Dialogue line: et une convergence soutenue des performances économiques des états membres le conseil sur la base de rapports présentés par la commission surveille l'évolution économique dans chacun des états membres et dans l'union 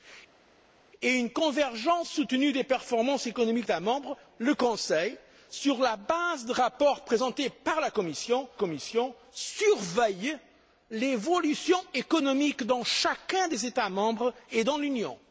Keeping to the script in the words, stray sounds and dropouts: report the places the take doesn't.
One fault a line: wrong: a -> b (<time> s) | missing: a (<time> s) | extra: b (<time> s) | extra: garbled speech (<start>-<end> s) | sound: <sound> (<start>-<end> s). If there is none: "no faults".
missing: des (3.7 s)
extra: commission (8.5 s)